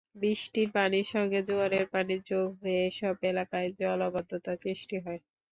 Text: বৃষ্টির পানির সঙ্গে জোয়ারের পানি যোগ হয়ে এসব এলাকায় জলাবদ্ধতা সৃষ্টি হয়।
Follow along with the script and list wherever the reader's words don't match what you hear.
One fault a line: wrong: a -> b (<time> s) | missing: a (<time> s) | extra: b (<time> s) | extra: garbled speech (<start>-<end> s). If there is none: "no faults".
no faults